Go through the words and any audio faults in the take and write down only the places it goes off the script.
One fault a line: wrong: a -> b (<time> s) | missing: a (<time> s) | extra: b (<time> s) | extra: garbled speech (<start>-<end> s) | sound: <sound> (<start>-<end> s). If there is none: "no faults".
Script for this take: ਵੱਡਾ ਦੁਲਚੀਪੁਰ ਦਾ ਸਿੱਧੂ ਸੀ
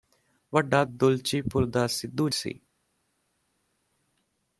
no faults